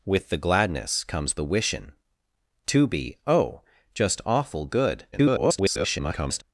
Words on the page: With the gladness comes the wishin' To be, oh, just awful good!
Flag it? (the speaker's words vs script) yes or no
yes